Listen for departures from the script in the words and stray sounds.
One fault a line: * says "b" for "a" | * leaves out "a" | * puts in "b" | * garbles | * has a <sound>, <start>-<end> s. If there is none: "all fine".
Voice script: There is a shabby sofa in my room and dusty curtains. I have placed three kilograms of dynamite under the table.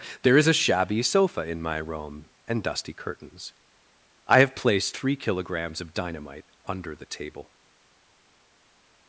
all fine